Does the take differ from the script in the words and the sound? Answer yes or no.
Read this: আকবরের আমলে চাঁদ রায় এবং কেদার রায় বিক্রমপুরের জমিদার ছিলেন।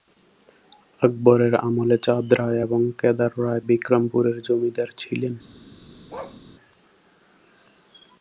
yes